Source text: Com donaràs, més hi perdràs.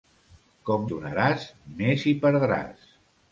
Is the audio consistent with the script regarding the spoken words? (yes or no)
yes